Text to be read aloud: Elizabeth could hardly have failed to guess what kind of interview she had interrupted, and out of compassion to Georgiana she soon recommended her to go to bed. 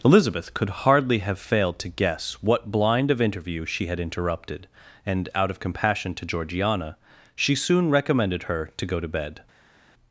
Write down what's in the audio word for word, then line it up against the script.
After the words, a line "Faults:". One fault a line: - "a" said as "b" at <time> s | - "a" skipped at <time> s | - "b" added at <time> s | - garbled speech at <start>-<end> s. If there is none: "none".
Elizabeth could hardly have failed to guess what blind of interview she had interrupted, and out of compassion to Georgiana she soon recommended her to go to bed.
Faults:
- "kind" said as "blind" at 2.7 s